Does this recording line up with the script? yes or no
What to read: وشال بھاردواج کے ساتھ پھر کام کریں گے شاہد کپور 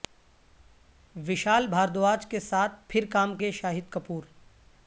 no